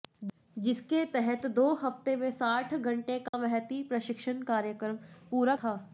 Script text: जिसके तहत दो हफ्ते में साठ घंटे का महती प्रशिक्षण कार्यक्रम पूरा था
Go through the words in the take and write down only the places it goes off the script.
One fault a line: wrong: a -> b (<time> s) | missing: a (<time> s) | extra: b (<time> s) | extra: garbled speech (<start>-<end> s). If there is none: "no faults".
no faults